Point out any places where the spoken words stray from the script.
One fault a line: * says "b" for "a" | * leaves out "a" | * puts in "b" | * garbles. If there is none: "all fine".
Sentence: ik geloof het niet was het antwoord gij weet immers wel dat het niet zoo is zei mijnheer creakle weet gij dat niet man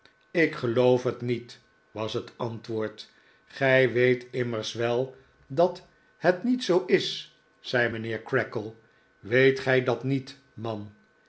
all fine